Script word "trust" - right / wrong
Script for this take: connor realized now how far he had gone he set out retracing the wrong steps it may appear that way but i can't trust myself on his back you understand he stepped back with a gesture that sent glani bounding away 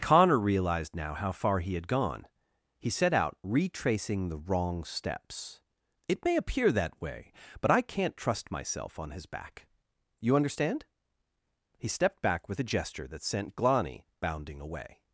right